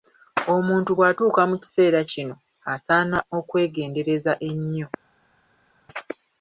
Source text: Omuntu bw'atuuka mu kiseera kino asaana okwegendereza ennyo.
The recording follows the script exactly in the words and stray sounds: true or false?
true